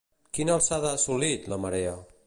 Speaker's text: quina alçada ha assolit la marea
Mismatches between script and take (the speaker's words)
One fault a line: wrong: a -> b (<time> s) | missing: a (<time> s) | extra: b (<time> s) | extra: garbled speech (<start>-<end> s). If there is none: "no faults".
no faults